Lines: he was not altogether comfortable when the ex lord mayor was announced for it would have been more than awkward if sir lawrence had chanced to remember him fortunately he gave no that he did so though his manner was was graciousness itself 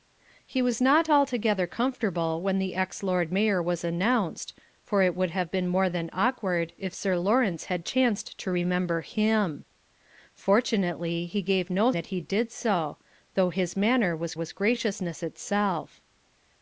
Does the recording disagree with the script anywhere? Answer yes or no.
no